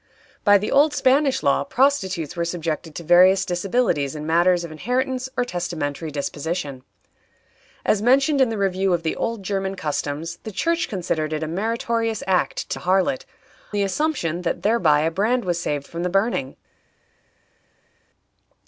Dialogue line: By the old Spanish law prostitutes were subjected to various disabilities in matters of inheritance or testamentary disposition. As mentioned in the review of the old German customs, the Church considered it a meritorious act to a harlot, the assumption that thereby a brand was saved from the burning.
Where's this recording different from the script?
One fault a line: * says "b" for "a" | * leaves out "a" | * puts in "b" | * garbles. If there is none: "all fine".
all fine